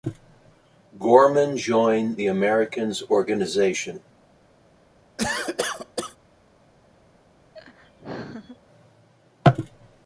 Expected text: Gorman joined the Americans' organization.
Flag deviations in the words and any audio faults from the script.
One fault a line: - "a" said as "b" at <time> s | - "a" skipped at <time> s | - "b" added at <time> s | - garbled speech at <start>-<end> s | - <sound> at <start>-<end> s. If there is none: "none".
- cough at 5.2-6.2 s
- laugh at 7.5-8.6 s